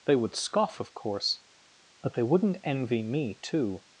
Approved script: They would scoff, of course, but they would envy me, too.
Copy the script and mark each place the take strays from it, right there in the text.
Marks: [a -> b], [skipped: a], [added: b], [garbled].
They would scoff, of course, but they [would -> wouldn't] envy me, too.